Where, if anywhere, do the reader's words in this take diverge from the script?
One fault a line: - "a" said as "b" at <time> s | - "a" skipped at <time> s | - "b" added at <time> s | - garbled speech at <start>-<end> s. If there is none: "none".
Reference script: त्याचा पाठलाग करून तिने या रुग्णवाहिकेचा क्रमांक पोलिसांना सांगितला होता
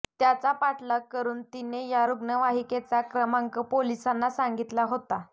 none